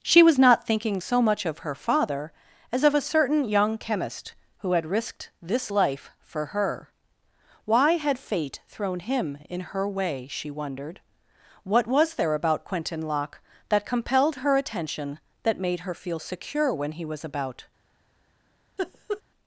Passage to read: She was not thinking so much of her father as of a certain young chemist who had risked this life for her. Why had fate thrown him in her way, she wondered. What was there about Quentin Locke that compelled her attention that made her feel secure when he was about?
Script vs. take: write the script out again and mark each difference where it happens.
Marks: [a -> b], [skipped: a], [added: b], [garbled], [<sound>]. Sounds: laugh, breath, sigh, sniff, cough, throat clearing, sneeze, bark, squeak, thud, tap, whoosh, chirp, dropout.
She was not thinking so much of her father as of a certain young chemist who had risked this life for her. Why had fate thrown him in her way, she wondered. What was there about Quentin Locke that compelled her attention that made her feel secure when he was about? [laugh]